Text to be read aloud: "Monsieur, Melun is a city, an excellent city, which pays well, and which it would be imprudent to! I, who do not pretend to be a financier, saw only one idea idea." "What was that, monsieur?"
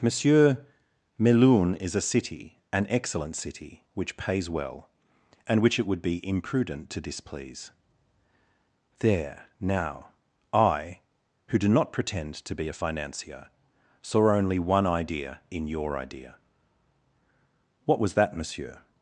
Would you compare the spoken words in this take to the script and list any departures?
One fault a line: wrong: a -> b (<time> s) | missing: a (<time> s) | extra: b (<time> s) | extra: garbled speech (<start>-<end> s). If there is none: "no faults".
extra: displease There now (7.0 s)
extra: in your (15.5 s)